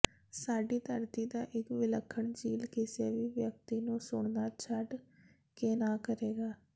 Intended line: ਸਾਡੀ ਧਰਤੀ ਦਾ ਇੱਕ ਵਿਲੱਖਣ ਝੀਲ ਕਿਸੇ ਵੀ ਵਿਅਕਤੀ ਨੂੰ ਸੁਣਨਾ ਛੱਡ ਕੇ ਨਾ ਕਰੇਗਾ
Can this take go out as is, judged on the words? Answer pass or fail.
pass